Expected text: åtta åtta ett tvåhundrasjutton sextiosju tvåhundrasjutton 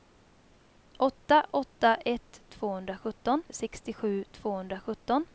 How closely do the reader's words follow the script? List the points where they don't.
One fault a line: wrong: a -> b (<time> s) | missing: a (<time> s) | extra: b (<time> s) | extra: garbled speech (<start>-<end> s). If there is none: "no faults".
no faults